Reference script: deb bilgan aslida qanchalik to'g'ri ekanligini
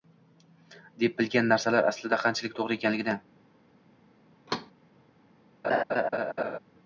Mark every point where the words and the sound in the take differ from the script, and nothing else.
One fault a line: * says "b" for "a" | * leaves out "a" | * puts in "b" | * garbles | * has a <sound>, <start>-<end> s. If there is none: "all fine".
* puts in "narsalar"
* has a thud, 4.5-4.7 s
* has a laugh, 5.6-6.6 s